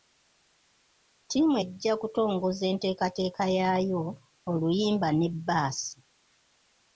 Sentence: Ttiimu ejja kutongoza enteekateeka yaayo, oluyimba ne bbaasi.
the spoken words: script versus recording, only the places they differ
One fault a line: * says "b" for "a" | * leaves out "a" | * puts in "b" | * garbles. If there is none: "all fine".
all fine